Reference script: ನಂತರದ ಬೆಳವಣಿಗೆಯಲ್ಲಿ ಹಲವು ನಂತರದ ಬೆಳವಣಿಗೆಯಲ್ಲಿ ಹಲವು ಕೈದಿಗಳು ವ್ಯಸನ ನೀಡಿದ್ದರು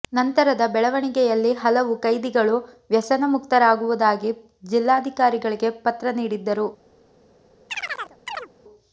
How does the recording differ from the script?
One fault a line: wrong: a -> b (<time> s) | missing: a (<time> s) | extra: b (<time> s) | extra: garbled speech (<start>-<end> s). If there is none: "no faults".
wrong: ನಂತರದ ಬೆಳವಣಿಗೆಯಲ್ಲಿ ಹಲವು ಕೈದಿಗಳು ವ್ಯಸನ -> ಕೈದಿಗಳು ವ್ಯಸನ ಮುಕ್ತರಾಗುವುದಾಗಿ ಜಿಲ್ಲಾಧಿಕಾರಿಗಳಿಗೆ ಪತ್ರ (2.0 s)